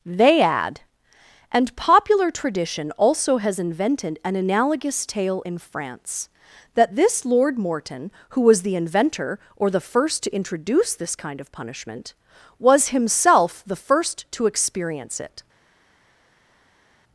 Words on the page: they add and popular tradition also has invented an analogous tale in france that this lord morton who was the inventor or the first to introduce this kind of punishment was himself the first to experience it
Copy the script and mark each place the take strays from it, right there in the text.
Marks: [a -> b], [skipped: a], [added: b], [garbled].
they add and popular tradition also has invented an analogous tale in france that this lord morton who was the inventor or the first to introduce this kind of punishment was himself the first to experience it